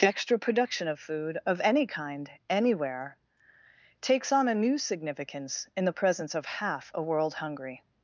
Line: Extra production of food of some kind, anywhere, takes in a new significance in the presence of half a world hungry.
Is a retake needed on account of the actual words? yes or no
yes